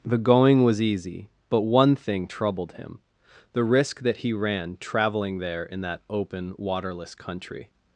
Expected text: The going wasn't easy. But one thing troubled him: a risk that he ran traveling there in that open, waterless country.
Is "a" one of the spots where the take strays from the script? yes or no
yes